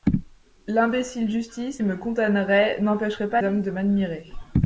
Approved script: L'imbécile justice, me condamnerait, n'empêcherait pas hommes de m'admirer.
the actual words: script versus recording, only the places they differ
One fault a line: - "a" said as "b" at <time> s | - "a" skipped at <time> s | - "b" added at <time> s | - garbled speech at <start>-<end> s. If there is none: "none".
none